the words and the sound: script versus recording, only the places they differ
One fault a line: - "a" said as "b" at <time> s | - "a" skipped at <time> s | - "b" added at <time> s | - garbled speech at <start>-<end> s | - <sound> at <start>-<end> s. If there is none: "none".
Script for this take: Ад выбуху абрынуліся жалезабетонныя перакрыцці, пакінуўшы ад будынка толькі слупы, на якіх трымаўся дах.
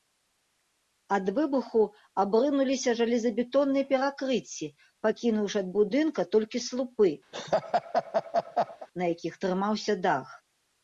- laugh at 7.3-8.9 s